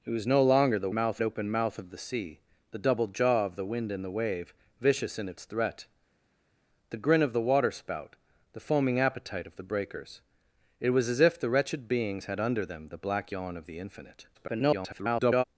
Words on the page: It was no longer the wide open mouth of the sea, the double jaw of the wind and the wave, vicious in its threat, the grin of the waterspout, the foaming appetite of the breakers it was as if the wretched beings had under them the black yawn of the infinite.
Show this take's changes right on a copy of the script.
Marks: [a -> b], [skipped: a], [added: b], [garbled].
It was no longer the [wide -> mouth] open mouth of the sea, the double jaw of the wind and the wave, vicious in its threat, the grin of the waterspout, the foaming appetite of the breakers it was as if the wretched beings had under them the black yawn of the infinite. [garbled]